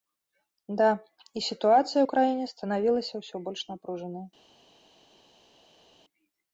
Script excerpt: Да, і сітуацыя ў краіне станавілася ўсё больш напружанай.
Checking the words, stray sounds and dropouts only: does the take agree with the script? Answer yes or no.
yes